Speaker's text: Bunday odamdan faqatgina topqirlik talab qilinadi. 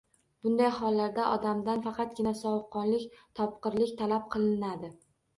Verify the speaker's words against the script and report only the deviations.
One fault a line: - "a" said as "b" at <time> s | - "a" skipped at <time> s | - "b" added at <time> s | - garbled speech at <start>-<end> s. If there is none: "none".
- "hollarda" added at 0.8 s
- "sovuqqonlik" added at 2.4 s